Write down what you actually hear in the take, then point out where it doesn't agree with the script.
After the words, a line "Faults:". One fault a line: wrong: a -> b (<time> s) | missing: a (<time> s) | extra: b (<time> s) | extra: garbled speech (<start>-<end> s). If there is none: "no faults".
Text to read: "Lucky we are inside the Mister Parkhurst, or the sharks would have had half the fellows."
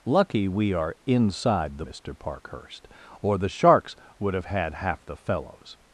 "Lucky we are inside the Mister Parkhurst, or the sharks would have had half the fellows."
Faults:
no faults